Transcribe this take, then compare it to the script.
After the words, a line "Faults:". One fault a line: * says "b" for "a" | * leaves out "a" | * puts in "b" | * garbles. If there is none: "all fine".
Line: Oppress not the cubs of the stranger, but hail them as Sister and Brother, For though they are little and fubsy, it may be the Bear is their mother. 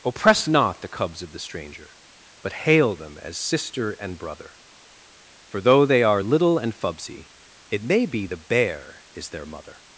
Oppress not the cubs of the stranger, but hail them as Sister and Brother, For though they are little and fubsy, it may be the Bear is their mother.
Faults:
all fine